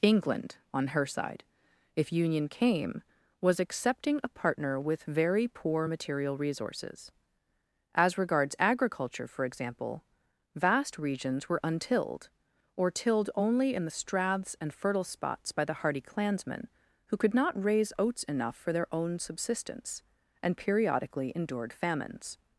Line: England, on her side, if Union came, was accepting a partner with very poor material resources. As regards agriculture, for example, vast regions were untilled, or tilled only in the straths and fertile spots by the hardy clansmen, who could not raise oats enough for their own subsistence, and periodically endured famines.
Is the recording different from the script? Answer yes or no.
no